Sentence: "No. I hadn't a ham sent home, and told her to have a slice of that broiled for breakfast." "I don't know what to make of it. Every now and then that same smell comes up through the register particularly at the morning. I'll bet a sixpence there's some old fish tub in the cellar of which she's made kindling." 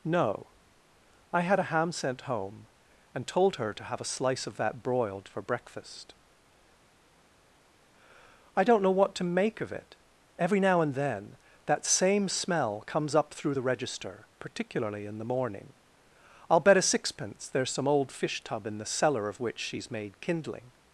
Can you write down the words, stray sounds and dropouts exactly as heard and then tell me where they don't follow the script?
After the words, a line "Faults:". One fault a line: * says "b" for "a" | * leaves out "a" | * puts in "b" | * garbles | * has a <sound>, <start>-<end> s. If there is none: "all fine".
"No. I had a ham sent home, and told her to have a slice of that broiled for breakfast." "I don't know what to make of it. Every now and then that same smell comes up through the register particularly in the morning. I'll bet a sixpence there's some old fish tub in the cellar of which she's made kindling."
Faults:
* says "had" for "hadn't"
* says "in" for "at"